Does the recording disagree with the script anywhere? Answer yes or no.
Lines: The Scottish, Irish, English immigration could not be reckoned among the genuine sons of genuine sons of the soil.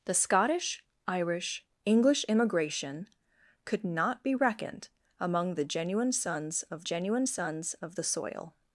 no